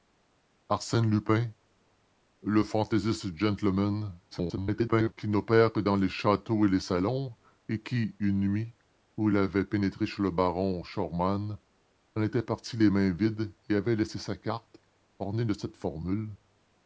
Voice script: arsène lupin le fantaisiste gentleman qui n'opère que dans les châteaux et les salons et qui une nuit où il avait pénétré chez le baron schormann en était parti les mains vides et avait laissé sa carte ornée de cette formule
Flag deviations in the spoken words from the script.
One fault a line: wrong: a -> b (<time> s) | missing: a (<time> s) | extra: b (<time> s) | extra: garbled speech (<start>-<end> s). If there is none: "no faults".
extra: garbled speech (4.3-5.1 s)